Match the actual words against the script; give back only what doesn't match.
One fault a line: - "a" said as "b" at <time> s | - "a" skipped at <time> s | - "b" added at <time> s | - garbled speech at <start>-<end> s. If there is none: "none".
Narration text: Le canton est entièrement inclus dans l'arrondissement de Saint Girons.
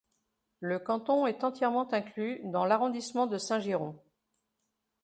none